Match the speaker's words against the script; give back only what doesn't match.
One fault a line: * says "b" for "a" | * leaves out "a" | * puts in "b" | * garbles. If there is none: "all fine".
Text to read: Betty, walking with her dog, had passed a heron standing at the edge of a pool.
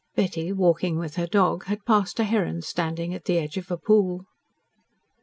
all fine